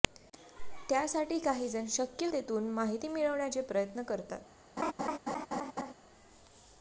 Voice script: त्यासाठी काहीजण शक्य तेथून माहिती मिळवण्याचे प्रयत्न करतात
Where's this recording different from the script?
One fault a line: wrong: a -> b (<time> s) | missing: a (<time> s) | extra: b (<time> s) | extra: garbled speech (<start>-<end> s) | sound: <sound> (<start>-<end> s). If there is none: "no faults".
sound: laugh (4.8-5.9 s)